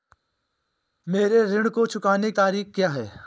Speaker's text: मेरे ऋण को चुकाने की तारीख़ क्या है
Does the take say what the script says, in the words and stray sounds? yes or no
no